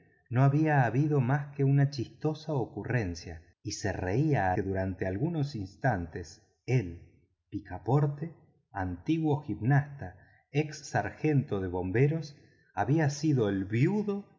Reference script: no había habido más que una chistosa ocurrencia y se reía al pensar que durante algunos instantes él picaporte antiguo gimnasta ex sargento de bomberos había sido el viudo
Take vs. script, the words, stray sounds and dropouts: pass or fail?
fail